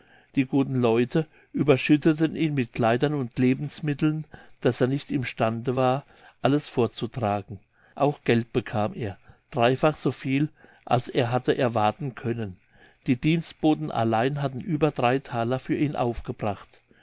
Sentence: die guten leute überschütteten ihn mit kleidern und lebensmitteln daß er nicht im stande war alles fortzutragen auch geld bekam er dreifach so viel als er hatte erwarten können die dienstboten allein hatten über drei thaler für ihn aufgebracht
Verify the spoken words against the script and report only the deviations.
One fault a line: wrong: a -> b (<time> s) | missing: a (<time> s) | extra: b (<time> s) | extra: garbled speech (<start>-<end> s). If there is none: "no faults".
no faults